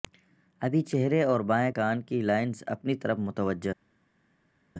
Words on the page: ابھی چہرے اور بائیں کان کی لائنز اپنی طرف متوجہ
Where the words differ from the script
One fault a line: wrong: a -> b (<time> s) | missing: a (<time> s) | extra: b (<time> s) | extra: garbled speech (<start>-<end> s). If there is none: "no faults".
no faults